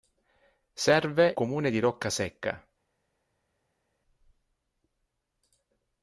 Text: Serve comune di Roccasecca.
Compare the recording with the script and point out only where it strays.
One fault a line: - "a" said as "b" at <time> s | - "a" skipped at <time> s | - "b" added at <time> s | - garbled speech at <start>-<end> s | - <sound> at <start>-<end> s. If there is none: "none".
none